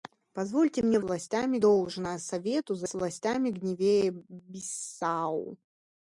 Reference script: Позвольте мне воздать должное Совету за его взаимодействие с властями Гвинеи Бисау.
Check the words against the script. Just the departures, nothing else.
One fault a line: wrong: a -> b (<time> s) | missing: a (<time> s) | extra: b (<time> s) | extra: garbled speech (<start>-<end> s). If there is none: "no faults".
wrong: воздать -> властями (1.0 s)
missing: его взаимодействие (2.9 s)